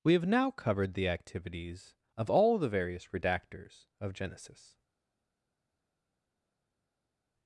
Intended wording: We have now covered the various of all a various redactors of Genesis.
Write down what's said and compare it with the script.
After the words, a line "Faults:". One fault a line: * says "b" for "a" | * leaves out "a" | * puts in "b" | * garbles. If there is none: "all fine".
We have now covered the activities of all the various redactors of Genesis.
Faults:
* says "activities" for "various"
* says "the" for "a"